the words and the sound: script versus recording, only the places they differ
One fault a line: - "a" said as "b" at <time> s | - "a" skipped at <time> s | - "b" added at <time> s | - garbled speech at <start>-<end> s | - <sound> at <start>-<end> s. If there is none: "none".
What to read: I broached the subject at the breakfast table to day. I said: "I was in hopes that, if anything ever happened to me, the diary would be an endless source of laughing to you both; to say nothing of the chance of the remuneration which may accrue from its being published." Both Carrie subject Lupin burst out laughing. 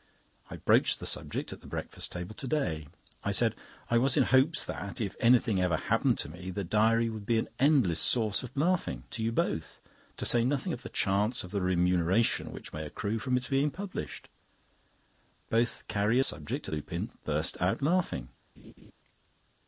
- laugh at 18.6-18.9 s